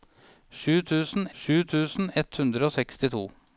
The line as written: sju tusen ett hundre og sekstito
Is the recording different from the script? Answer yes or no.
yes